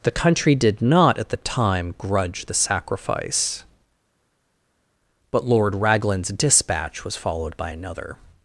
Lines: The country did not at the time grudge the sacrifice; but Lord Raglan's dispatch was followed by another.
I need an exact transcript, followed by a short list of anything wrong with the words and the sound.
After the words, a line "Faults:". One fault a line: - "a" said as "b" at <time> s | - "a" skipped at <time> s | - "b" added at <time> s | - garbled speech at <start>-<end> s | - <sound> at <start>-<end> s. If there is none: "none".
The country did not at the time grudge the sacrifice; but Lord Raglan's dispatch was followed by another.
Faults:
none